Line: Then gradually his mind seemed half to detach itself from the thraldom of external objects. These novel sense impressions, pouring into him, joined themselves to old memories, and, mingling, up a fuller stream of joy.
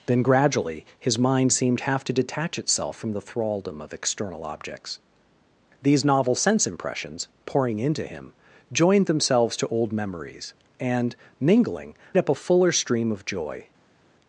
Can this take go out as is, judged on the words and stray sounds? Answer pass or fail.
pass